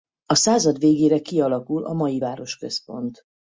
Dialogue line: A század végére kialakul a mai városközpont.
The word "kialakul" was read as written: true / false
true